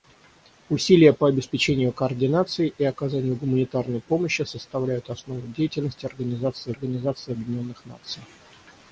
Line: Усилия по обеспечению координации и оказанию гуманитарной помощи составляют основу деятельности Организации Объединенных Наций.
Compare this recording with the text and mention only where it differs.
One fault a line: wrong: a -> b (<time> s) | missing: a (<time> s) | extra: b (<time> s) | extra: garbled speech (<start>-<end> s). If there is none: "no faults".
extra: Организации (6.7 s)